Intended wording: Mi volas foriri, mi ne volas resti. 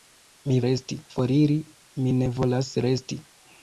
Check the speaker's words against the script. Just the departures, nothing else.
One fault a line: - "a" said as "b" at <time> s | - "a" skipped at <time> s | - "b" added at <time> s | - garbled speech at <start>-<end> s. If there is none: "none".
- "volas" said as "resti" at 0.7 s